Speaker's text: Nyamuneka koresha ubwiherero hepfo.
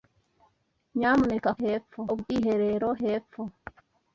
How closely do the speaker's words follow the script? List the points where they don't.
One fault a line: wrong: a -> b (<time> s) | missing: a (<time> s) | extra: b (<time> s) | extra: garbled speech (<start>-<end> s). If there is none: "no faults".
wrong: koresha -> hepfo (1.6 s)